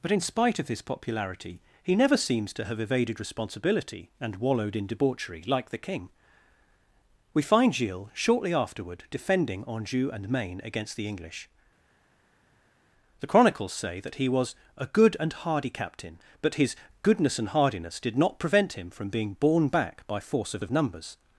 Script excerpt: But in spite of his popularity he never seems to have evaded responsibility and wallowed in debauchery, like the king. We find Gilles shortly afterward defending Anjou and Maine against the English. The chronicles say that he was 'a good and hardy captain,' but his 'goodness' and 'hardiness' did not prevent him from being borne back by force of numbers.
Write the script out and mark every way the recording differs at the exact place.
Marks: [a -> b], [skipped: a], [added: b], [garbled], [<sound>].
But in spite of his popularity he never seems to have evaded responsibility and wallowed in debauchery, like the king. We find Gilles shortly afterward defending Anjou and Maine against the English. The chronicles say that he was 'a good and hardy captain,' but his 'goodness' and 'hardiness' did not prevent him from being borne back by force of [added: of] numbers.